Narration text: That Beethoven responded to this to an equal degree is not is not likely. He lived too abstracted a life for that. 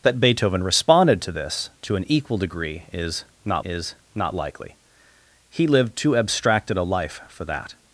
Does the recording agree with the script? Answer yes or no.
yes